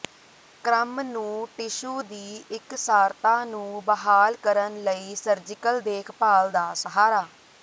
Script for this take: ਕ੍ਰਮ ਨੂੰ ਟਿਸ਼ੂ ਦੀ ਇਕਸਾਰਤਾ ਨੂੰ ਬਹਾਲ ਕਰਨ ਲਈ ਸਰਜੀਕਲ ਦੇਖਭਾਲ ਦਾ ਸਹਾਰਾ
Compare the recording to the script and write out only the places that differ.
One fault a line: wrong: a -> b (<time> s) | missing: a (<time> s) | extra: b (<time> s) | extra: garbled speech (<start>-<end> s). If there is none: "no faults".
no faults